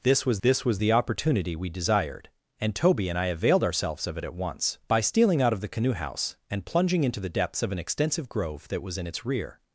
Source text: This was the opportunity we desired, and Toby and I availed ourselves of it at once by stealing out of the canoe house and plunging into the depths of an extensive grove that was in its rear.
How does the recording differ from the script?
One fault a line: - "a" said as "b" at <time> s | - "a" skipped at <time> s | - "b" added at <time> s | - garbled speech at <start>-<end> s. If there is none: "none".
- "this was" added at 0.4 s